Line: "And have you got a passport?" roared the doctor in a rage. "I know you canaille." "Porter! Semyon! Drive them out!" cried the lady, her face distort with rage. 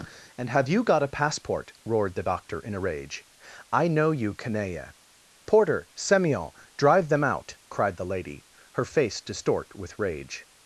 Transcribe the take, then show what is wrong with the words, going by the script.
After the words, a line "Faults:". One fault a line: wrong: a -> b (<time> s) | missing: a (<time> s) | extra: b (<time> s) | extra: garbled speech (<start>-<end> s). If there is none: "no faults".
"And have you got a passport?" roared the doctor in a rage. "I know you canaille." "Porter! Semyon! Drive them out!" cried the lady, her face distort with rage.
Faults:
no faults